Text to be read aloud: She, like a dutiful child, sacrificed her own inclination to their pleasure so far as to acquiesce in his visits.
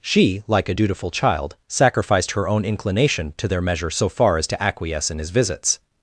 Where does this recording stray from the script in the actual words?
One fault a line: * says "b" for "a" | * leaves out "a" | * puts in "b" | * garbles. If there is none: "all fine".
* says "measure" for "pleasure"